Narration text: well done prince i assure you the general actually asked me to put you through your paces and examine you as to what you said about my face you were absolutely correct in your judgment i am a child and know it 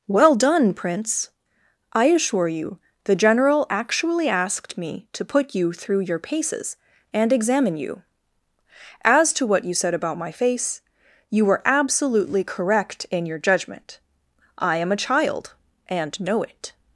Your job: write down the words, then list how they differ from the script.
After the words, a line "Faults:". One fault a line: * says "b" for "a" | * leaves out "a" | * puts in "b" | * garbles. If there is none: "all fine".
well done prince i assure you the general actually asked me to put you through your paces and examine you as to what you said about my face you were absolutely correct in your judgment i am a child and know it
Faults:
all fine